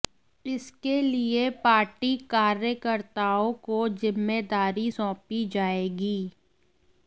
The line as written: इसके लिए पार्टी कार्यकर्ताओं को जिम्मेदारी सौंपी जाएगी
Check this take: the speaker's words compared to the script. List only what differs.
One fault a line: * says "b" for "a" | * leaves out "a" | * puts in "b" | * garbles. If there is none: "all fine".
all fine